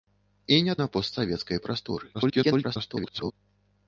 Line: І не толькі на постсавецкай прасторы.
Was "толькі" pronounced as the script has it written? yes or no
no